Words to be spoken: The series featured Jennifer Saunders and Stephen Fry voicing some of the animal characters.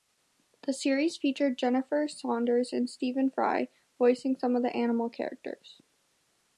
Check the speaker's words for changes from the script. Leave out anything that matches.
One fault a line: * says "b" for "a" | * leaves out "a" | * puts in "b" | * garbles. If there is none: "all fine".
all fine